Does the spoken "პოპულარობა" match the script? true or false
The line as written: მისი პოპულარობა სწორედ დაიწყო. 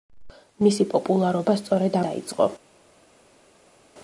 true